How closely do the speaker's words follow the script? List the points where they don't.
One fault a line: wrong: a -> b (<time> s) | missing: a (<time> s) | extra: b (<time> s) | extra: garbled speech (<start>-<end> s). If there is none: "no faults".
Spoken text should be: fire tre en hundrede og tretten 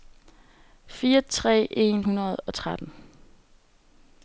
no faults